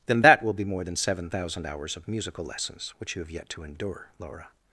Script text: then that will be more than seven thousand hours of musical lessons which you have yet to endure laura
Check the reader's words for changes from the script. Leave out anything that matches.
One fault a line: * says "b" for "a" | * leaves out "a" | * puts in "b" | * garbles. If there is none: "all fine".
all fine